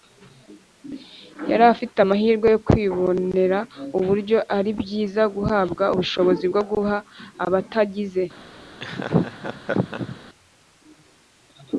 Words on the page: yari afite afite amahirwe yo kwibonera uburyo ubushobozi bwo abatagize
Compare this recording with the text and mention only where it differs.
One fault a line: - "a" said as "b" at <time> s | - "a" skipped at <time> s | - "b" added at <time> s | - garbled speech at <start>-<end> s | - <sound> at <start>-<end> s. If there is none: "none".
- "afite" skipped at 2.0 s
- "ari byiza guhabwa" added at 4.6 s
- "guha" added at 6.7 s
- laugh at 8.8-10.2 s